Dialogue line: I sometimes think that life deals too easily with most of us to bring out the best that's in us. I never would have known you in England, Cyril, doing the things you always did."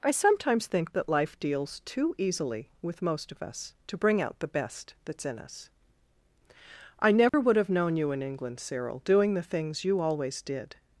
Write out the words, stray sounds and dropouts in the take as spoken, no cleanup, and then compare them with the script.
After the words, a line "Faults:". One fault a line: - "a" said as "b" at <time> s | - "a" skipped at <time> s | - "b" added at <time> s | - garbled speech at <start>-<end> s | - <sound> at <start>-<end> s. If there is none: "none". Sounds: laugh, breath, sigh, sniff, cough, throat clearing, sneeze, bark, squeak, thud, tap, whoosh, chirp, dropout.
I sometimes think that life deals too easily with most of us to bring out the best that's in us. I never would have known you in England, Cyril, doing the things you always did."
Faults:
- dropout at 7.3-7.3 s